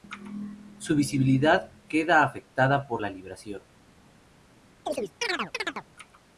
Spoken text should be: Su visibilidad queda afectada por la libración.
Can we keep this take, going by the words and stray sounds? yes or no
no